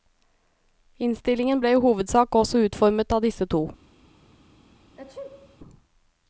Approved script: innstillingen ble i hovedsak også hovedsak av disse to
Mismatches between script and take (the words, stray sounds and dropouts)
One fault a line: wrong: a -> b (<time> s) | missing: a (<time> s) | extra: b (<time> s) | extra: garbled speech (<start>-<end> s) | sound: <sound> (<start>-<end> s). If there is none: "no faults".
wrong: hovedsak -> utformet (2.7 s)
sound: sneeze (5.0-5.6 s)